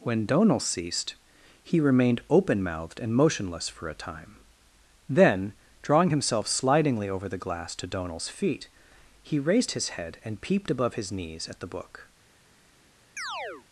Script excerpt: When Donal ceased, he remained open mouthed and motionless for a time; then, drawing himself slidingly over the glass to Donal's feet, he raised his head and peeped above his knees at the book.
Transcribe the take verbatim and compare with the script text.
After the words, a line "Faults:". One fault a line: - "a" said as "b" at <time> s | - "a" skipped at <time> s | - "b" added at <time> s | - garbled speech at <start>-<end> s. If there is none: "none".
When Donal ceased, he remained open mouthed and motionless for a time; then, drawing himself slidingly over the glass to Donal's feet, he raised his head and peeped above his knees at the book.
Faults:
none